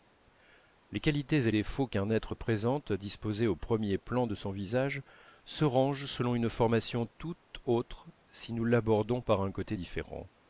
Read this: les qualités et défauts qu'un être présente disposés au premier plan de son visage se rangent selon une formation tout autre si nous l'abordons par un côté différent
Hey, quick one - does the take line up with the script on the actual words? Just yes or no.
yes